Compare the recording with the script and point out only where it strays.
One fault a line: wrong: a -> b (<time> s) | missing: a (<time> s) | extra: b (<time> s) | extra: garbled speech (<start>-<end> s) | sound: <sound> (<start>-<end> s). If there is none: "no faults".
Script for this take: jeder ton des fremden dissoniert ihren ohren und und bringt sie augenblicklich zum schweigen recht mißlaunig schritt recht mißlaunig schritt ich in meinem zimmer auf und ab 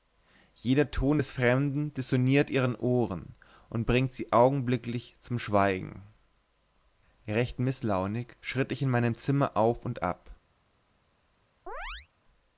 missing: und (3.8 s)
missing: recht mißlaunig schritt (8.7 s)
sound: chirp (11.7-12.1 s)